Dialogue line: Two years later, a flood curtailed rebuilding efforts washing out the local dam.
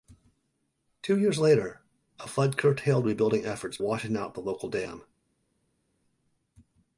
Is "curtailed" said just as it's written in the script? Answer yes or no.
yes